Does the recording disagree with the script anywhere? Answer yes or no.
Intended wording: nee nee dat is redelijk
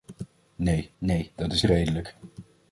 no